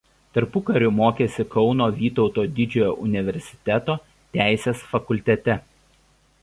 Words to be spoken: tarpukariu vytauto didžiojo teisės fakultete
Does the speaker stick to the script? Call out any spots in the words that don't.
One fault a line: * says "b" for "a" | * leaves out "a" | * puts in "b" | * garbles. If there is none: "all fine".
* puts in "mokėsi kauno"
* puts in "universiteto"